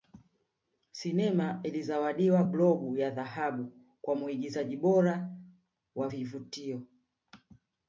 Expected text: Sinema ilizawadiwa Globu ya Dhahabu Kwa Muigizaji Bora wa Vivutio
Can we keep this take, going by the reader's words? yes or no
yes